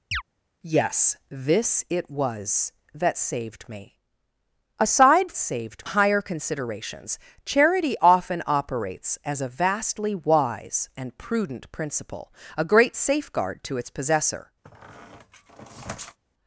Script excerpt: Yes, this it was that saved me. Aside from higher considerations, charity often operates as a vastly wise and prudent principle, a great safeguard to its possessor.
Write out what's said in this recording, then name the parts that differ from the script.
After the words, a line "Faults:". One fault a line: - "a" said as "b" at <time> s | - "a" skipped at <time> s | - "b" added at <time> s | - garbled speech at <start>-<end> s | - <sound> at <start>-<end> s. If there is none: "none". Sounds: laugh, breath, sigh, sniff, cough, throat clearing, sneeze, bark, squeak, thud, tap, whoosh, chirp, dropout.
Yes, this it was that saved me. Aside saved higher considerations, charity often operates as a vastly wise and prudent principle, a great safeguard to its possessor.
Faults:
- chirp at 0.1-0.2 s
- "from" said as "saved" at 5.4 s
- squeak at 14.6-16.2 s